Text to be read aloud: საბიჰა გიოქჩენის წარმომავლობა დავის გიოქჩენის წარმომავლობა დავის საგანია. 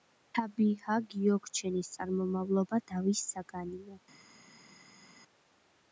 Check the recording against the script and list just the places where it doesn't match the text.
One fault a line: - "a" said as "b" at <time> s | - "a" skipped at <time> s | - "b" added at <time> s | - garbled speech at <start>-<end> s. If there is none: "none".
- "გიოქჩენის წარმომავლობა დავის" skipped at 3.2 s